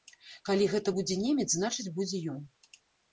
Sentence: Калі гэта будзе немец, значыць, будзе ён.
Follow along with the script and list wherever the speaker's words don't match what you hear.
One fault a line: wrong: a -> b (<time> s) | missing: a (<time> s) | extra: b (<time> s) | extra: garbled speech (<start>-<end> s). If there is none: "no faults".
no faults